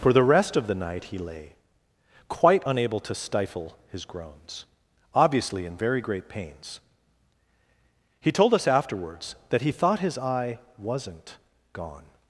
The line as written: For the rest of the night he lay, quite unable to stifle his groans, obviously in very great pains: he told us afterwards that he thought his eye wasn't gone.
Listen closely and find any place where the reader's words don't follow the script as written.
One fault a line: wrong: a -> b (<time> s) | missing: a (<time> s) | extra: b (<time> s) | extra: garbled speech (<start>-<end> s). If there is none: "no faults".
no faults